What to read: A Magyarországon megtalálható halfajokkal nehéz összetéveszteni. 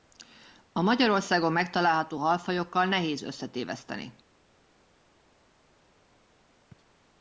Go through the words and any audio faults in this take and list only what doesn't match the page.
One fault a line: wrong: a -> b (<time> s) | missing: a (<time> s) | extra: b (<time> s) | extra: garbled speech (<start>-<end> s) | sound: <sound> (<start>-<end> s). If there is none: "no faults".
no faults